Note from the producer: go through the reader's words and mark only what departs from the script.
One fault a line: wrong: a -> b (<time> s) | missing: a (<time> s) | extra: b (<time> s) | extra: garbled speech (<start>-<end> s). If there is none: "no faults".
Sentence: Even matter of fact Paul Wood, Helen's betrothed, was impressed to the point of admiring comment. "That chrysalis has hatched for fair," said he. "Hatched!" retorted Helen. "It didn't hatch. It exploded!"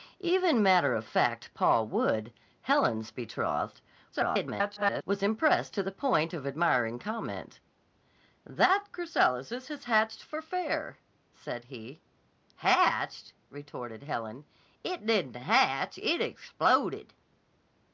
extra: garbled speech (4.1-5.0 s)